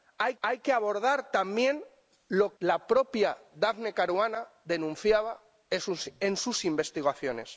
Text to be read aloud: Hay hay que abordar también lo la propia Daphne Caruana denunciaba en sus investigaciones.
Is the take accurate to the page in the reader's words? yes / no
yes